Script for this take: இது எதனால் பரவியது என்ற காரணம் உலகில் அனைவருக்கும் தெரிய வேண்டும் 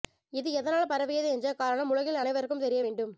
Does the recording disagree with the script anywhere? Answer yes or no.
no